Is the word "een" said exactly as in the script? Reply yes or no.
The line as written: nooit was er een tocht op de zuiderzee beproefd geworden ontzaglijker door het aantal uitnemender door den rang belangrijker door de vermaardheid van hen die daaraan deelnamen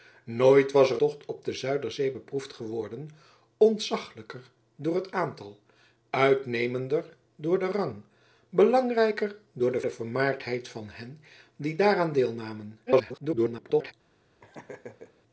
no